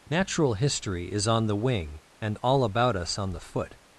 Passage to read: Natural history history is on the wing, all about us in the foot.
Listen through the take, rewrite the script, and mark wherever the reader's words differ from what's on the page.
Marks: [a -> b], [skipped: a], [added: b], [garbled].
Natural history [skipped: history] is on the wing, [added: and] all about us [in -> on] the foot.